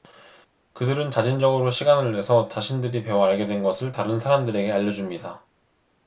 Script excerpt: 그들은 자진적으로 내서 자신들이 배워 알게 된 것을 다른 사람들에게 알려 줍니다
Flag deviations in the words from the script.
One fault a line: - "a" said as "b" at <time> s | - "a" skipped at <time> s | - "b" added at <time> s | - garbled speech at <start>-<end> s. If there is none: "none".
- "시간을" added at 1.7 s